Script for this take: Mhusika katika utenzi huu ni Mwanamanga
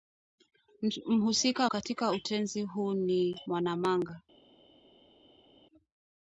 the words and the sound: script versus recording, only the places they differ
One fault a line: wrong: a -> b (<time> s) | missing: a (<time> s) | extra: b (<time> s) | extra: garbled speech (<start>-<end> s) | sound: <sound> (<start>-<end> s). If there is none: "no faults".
no faults